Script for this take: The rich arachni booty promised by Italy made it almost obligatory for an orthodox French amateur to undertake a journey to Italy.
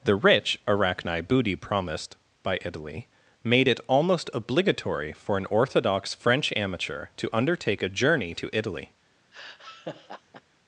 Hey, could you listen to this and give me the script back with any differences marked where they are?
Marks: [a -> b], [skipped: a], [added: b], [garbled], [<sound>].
The rich arachni booty promised by Italy made it almost obligatory for an orthodox French amateur to undertake a journey to Italy. [laugh]